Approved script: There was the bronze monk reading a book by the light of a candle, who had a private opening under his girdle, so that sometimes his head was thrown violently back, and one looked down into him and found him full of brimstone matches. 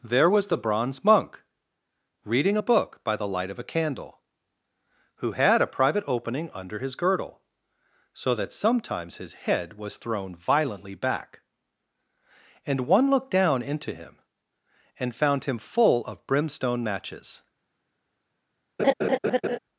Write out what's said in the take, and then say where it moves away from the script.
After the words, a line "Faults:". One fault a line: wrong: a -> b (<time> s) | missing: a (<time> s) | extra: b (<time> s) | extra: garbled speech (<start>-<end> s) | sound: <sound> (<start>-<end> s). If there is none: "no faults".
There was the bronze monk reading a book by the light of a candle, who had a private opening under his girdle, so that sometimes his head was thrown violently back, and one looked down into him and found him full of brimstone matches.
Faults:
sound: laugh (18.8-19.6 s)